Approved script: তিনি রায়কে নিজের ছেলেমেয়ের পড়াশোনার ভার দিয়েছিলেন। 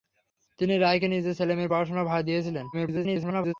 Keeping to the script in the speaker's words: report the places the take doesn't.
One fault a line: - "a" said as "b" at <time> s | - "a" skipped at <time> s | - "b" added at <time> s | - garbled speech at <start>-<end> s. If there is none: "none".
- garbled speech at 2.7-3.5 s